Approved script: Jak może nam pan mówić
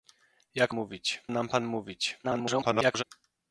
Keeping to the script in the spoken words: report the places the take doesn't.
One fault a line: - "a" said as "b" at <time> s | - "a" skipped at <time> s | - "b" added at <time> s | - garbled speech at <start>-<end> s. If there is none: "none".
- "może" said as "mówić" at 0.7 s
- garbled speech at 2.2-3.0 s